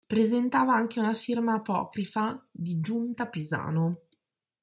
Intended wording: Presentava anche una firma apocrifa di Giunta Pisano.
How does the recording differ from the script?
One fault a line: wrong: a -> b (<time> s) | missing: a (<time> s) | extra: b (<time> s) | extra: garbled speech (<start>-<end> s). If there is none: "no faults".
no faults